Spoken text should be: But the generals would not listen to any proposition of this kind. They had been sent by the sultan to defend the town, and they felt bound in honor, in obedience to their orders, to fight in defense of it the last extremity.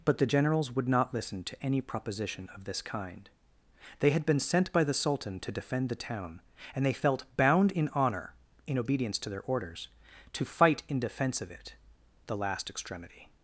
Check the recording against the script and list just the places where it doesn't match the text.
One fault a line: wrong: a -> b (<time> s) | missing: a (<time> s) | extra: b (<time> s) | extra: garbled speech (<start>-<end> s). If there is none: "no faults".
no faults